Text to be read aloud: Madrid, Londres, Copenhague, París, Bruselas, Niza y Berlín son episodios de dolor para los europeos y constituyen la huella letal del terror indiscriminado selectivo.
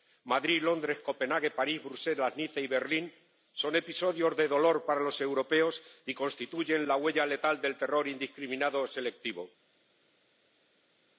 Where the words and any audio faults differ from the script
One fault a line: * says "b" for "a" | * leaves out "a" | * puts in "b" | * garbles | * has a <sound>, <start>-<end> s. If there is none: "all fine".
all fine